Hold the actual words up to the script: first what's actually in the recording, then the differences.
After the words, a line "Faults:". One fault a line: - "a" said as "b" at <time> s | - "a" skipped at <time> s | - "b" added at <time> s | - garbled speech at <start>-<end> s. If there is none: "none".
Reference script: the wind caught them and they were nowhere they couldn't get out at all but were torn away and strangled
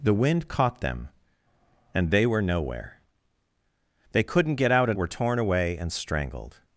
the wind caught them and they were nowhere they couldn't get out at were torn away and strangled
Faults:
- "all but" skipped at 5.0 s